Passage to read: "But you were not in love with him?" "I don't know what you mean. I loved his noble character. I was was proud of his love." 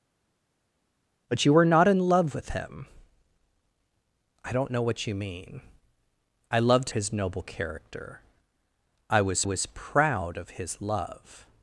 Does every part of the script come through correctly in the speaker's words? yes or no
yes